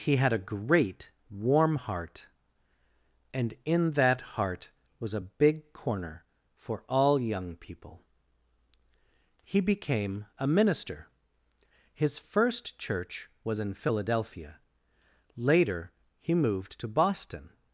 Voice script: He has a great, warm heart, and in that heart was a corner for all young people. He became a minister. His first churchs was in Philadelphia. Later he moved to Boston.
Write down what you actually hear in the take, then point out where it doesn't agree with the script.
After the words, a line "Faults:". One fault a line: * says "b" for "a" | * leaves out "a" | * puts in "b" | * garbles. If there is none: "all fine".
He had a great, warm heart, and in that heart was a big corner for all young people. He became a minister. His first church was in Philadelphia. Later he moved to Boston.
Faults:
* says "had" for "has"
* puts in "big"
* says "church" for "churchs"